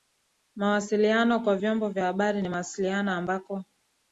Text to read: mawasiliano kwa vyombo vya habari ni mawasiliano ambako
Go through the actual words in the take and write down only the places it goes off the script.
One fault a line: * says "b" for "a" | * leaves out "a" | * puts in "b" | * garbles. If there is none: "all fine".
all fine